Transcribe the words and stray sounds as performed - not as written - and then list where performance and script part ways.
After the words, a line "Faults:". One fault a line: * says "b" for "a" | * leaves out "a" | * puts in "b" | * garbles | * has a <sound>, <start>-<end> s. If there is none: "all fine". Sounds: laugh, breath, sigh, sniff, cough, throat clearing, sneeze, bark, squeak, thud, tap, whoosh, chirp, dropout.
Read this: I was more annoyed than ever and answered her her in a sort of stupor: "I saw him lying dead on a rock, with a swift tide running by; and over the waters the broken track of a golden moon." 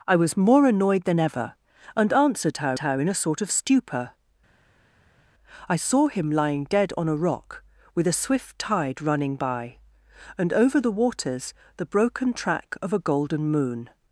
I was more annoyed than ever and answered her her in a sort of stupor: "I saw him lying dead on a rock, with a swift tide running by; and over the waters the broken track of a golden moon."
Faults:
all fine